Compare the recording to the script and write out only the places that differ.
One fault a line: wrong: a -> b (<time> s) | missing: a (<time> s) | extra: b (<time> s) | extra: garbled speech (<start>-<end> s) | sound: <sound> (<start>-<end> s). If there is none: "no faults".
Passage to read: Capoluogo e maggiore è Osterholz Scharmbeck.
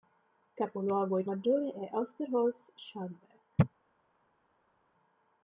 no faults